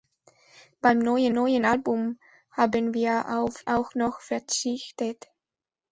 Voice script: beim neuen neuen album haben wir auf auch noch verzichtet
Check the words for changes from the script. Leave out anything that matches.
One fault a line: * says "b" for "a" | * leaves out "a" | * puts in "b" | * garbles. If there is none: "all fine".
all fine